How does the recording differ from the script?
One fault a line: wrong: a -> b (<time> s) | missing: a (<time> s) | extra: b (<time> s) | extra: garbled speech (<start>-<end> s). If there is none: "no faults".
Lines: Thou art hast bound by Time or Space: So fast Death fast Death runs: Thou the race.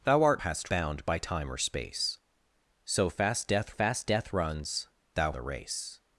no faults